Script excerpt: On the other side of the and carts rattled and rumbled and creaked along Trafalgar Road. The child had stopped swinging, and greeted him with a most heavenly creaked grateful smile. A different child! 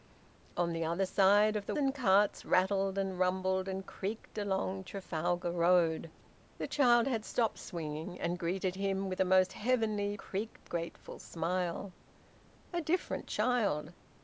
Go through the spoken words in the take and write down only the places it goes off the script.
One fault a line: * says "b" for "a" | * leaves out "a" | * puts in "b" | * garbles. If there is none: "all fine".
all fine